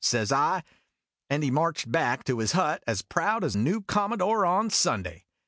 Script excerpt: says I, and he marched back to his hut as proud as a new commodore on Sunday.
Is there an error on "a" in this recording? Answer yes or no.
yes